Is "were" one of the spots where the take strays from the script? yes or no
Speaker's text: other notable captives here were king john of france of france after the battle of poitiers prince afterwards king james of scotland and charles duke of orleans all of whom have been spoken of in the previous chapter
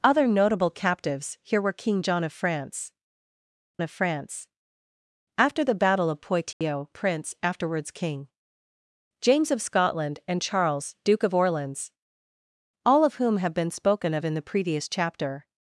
no